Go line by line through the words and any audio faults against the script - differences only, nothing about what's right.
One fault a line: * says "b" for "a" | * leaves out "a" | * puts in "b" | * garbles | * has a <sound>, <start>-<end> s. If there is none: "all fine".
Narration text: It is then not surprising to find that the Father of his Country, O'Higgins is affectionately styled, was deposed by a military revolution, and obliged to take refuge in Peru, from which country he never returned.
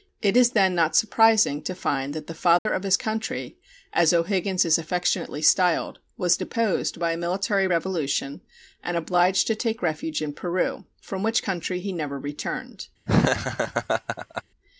* has a dropout, 2.6-2.7 s
* puts in "as"
* has a laugh, 13.1-14.4 s